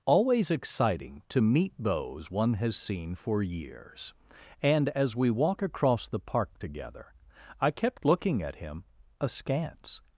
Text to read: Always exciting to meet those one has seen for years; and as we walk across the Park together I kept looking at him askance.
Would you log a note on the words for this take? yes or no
no